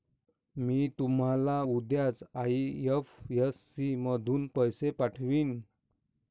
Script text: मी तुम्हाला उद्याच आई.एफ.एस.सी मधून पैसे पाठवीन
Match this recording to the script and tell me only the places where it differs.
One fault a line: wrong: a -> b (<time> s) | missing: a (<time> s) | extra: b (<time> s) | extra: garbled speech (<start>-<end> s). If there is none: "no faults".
no faults